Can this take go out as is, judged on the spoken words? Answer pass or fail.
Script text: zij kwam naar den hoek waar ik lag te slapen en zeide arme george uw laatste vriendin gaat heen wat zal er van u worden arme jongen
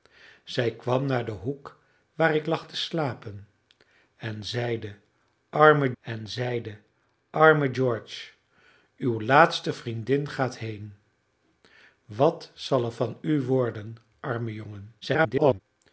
fail